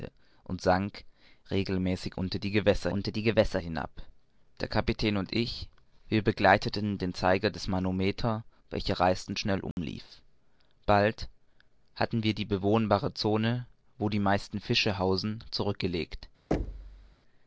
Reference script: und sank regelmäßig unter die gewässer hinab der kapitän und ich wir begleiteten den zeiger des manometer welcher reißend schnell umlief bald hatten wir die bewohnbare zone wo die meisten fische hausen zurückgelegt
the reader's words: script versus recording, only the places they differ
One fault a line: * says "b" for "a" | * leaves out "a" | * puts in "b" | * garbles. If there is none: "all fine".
* puts in "unter die gewässer"